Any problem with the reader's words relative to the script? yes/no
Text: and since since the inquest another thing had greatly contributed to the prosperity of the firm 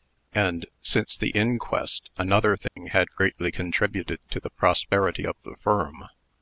yes